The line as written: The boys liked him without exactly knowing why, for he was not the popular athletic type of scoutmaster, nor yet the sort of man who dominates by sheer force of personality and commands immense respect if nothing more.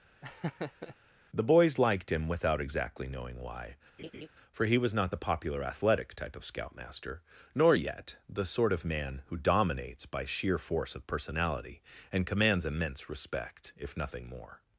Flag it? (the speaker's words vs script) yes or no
no